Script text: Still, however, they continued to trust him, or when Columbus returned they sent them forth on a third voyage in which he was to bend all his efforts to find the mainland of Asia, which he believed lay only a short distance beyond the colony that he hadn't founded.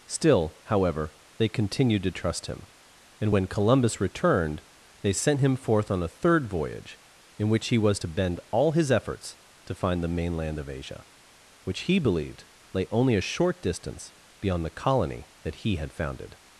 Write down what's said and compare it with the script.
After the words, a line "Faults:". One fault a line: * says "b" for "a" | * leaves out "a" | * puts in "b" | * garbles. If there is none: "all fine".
Still, however, they continued to trust him, and when Columbus returned they sent him forth on a third voyage in which he was to bend all his efforts to find the mainland of Asia, which he believed lay only a short distance beyond the colony that he had founded.
Faults:
* says "and" for "or"
* says "him" for "them"
* says "had" for "hadn't"